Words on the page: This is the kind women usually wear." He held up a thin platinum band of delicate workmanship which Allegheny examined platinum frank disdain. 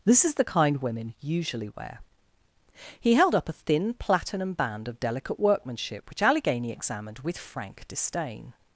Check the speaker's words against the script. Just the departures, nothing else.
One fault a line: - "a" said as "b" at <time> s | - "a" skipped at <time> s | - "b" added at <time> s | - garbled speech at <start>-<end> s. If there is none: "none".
- "platinum" said as "with" at 7.2 s